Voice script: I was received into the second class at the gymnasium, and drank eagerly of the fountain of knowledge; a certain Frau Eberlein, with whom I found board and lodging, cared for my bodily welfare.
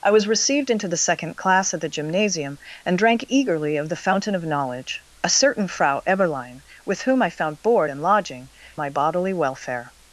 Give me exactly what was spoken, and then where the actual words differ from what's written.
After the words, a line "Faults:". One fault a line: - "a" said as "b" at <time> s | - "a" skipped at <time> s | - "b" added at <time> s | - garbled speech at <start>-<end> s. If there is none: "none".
I was received into the second class at the gymnasium, and drank eagerly of the fountain of knowledge; a certain Frau Eberlein, with whom I found board and lodging, my bodily welfare.
Faults:
- "cared for" skipped at 8.5 s